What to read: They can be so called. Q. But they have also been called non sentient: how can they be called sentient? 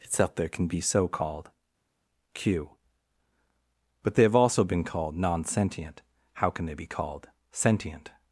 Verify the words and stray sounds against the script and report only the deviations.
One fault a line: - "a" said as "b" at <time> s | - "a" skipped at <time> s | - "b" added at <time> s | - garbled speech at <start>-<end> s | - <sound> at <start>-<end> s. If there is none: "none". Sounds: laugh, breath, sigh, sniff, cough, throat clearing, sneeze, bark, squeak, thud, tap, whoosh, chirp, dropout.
- "They" said as "Itself there" at 0.0 s